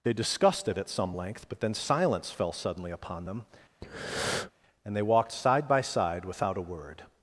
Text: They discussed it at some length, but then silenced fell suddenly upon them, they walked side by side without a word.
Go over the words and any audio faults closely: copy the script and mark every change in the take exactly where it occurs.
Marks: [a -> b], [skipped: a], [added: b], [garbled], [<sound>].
They discussed it at some length, but then [silenced -> silence] fell suddenly upon them, [breath] [added: and] they walked side by side without a word.